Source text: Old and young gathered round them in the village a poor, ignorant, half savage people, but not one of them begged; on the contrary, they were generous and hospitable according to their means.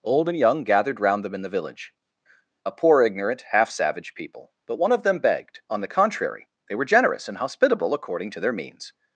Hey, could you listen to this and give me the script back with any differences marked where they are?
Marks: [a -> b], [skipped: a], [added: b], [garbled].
Old and young gathered round them in the village a poor, ignorant, half savage people, but [skipped: not] one of them begged; on the contrary, they were generous and hospitable according to their means.